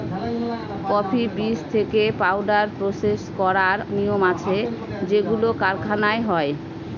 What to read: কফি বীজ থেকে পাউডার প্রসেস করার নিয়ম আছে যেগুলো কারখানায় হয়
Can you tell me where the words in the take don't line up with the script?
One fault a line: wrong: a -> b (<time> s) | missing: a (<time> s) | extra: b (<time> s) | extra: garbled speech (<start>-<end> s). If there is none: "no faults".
no faults